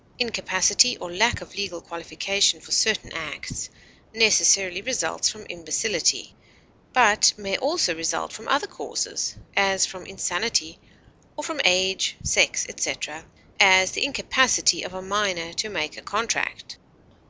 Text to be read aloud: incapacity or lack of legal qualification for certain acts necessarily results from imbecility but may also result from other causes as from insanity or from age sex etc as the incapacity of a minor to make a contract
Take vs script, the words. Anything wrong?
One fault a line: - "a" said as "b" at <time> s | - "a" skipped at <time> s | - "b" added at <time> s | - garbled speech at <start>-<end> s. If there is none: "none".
none